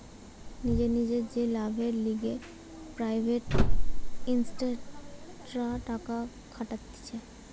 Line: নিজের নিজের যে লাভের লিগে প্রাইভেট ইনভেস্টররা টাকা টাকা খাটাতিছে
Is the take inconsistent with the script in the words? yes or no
yes